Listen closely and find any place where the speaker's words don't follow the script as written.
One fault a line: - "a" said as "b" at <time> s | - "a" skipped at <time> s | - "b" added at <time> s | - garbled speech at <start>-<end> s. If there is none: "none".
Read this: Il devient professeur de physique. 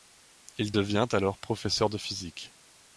- "alors" added at 1.1 s